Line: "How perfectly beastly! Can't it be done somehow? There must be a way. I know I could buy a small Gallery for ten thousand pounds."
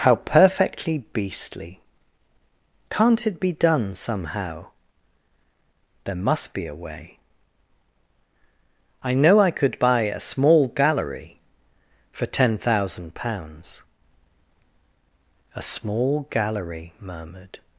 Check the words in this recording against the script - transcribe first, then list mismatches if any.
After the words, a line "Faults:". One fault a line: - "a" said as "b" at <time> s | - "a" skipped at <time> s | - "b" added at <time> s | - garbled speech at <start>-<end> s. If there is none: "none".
"How perfectly beastly! Can't it be done somehow? There must be a way. I know I could buy a small Gallery for ten thousand pounds." "A small Gallery," murmured
Faults:
- "A small Gallery murmured" added at 15.5 s